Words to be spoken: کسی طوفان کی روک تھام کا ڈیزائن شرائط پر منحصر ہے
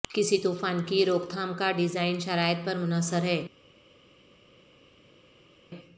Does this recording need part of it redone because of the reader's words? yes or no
no